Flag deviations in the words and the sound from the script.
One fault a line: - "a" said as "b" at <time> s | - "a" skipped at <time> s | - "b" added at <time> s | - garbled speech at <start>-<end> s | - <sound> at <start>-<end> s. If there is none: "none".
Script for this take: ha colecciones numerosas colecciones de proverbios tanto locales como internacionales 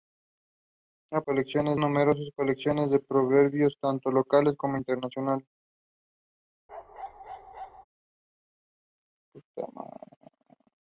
- bark at 6.7-7.8 s